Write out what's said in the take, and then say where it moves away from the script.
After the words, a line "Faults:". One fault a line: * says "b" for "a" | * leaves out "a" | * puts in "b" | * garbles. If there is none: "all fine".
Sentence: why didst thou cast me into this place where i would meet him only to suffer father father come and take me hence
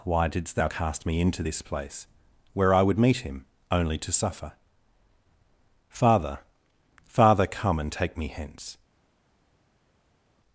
why didst thou cast me into this place where i would meet him only to suffer father father come and take me hence
Faults:
all fine